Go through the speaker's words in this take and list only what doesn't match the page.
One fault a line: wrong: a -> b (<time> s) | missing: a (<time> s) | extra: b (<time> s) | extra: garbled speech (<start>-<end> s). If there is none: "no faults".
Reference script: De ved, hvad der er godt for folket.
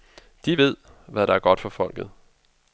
no faults